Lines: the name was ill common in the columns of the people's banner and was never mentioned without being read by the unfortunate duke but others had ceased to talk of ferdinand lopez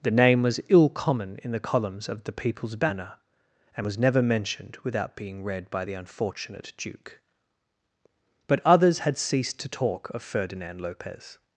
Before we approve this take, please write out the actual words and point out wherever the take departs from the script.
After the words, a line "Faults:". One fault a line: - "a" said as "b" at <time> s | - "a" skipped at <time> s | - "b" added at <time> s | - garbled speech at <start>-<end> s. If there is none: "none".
the name was ill common in the columns of the people's banner and was never mentioned without being read by the unfortunate duke but others had ceased to talk of ferdinand lopez
Faults:
none